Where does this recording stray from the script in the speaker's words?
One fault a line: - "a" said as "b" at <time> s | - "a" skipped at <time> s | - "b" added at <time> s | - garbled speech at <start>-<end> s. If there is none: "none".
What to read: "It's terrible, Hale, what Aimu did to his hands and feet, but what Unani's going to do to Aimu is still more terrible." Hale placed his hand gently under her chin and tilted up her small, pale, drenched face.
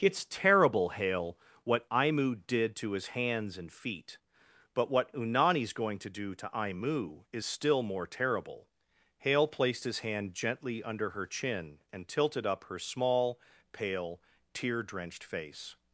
- "tear" added at 14.5 s